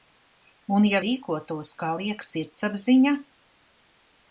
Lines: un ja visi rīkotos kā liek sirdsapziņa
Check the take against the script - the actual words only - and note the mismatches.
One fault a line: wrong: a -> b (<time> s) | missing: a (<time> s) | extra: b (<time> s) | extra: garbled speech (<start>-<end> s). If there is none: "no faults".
missing: visi (1.0 s)